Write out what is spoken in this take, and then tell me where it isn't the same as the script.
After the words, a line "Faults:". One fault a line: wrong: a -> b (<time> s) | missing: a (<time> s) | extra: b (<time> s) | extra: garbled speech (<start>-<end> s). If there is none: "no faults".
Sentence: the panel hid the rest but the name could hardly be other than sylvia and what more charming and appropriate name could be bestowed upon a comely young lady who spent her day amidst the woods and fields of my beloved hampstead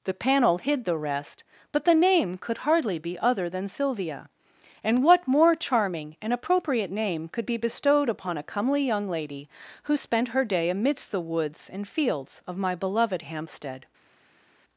the panel hid the rest but the name could hardly be other than sylvia and what more charming and appropriate name could be bestowed upon a comely young lady who spent her day amidst the woods and fields of my beloved hampstead
Faults:
no faults